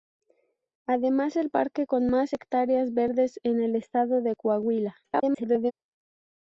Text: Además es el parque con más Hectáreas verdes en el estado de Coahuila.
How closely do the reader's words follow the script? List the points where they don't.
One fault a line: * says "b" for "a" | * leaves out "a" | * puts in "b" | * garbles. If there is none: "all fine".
* leaves out "es"
* garbles